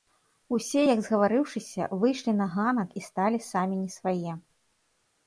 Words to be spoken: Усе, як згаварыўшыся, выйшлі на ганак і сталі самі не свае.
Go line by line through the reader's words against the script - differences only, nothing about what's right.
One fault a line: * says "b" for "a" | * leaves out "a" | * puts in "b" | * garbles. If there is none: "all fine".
all fine